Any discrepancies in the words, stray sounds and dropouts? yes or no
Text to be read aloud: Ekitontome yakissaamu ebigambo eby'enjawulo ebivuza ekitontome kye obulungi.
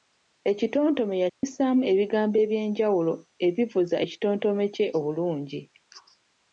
yes